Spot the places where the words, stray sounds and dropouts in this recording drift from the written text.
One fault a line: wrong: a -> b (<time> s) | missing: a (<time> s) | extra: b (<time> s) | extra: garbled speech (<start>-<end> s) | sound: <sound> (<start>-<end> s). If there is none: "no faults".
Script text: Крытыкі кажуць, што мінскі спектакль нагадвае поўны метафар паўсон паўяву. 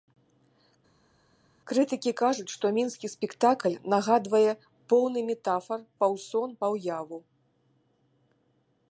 no faults